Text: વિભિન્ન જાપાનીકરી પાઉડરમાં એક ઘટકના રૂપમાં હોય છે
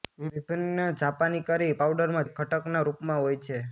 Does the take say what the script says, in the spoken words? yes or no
yes